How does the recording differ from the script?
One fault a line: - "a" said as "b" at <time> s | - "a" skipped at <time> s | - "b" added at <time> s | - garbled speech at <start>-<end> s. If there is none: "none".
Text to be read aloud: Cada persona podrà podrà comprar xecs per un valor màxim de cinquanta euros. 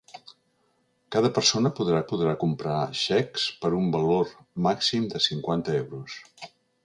none